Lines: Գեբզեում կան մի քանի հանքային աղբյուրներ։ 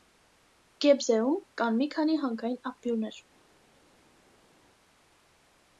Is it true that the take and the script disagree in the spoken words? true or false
false